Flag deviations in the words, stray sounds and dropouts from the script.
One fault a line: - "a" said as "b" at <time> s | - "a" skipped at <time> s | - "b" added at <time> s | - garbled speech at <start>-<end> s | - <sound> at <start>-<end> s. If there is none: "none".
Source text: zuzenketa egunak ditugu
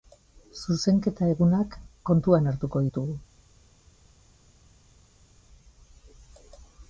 - "kontuan hartuko" added at 2.1 s